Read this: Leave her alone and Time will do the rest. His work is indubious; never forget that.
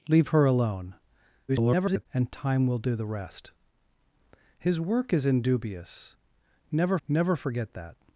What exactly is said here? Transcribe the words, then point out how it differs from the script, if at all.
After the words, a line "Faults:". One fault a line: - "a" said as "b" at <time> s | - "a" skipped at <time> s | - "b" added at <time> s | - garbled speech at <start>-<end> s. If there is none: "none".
Leave her alone [garbled] and Time will do the rest. His work is indubious; never never forget that.
Faults:
- garbled speech at 1.5-2.1 s
- "never" added at 7.1 s